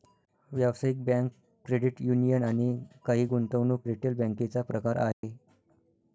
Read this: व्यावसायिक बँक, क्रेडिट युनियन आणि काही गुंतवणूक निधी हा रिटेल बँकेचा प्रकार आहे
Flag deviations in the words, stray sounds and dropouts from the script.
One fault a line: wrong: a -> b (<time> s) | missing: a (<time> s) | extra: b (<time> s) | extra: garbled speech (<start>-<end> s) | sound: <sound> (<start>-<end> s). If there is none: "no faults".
missing: निधी हा (3.9 s)
sound: dropout (5.1-5.2 s)